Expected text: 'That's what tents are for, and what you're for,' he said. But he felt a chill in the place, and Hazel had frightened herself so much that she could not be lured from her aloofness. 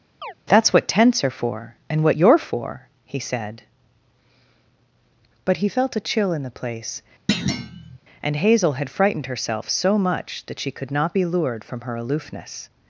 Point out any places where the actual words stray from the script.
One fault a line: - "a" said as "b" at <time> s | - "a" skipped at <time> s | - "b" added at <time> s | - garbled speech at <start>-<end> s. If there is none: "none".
none